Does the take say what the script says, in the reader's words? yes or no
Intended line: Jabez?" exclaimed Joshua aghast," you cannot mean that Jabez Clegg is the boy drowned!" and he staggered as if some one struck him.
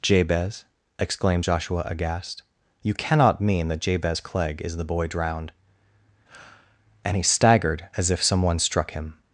yes